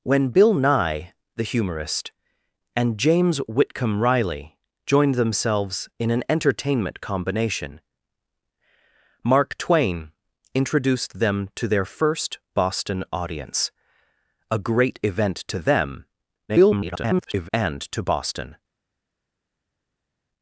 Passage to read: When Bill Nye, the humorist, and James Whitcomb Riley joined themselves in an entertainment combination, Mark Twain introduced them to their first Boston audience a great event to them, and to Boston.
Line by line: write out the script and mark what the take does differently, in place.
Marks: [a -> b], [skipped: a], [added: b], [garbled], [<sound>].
When Bill Nye, the humorist, and James Whitcomb Riley joined themselves in an entertainment combination, Mark Twain introduced them to their first Boston audience a great event to them, [garbled] and to Boston.